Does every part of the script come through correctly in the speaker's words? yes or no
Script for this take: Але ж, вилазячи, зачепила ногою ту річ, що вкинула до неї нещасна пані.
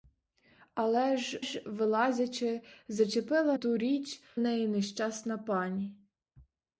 no